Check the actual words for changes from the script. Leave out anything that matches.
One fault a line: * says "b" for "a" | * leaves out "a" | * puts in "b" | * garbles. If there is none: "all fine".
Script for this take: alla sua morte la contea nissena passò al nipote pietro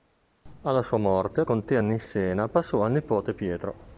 * leaves out "la"